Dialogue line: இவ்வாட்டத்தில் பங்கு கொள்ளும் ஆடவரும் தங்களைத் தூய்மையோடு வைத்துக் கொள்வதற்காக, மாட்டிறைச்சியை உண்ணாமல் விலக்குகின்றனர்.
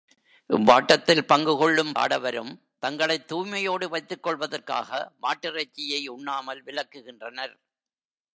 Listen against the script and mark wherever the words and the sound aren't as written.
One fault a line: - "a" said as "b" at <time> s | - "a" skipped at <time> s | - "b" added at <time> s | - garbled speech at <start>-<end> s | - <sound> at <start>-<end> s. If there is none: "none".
none